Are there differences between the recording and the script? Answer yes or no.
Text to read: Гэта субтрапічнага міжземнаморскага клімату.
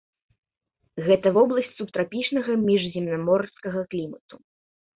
yes